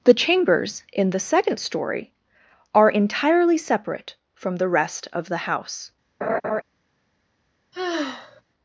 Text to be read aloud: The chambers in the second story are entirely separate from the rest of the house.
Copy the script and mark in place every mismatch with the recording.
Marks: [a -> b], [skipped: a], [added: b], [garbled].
The chambers in the second story are entirely separate from the rest of the house.